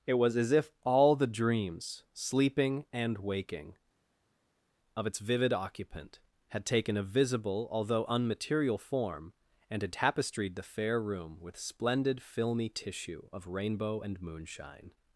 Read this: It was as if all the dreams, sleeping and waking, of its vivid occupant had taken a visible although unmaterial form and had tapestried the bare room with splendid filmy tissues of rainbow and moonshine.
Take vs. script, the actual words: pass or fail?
fail